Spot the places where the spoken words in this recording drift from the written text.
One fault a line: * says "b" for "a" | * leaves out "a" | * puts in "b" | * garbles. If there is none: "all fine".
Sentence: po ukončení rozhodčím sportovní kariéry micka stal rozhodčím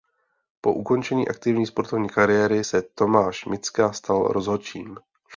* says "aktivní" for "rozhodčím"
* puts in "se tomáš"